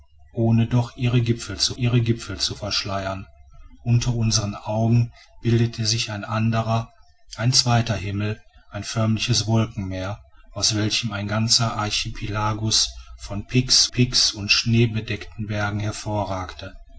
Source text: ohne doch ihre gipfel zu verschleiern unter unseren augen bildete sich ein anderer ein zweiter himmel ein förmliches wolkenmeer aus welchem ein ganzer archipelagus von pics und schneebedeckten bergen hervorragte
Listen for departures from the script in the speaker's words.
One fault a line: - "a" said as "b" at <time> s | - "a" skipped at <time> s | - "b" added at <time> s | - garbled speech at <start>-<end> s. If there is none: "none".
- "ihre gipfel zu" added at 1.8 s
- "pics" added at 13.9 s